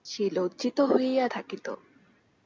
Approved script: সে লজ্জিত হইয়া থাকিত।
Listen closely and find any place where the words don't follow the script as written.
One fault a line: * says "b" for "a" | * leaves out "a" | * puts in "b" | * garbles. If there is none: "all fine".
all fine